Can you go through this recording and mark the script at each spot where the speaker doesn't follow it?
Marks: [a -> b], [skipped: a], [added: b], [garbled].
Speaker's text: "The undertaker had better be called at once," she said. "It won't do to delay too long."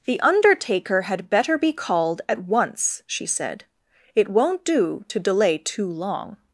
"The undertaker had better be called at once," she said. "It won't do to delay too long."